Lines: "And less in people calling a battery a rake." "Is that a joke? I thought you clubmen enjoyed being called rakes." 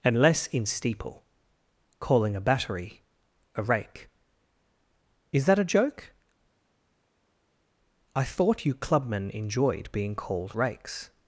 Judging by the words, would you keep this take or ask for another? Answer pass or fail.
fail